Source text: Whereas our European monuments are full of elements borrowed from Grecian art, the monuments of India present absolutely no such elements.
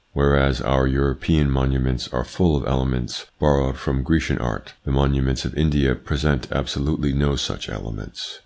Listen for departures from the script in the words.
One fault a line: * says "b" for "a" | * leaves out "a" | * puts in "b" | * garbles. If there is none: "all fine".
all fine